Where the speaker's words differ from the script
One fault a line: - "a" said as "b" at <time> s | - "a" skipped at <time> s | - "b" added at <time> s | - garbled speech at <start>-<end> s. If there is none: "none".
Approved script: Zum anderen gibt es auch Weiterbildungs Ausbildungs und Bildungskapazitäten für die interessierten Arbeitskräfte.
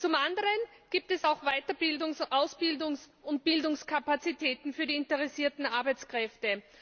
none